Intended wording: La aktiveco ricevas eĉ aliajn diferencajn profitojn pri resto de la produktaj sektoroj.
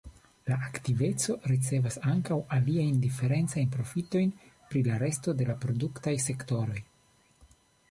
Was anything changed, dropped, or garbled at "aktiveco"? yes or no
no